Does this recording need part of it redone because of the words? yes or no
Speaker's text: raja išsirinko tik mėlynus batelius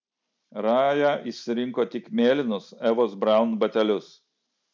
yes